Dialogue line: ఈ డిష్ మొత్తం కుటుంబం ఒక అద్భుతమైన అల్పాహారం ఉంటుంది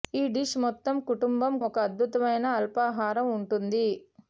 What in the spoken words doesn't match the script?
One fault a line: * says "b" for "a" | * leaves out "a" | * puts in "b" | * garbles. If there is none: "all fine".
all fine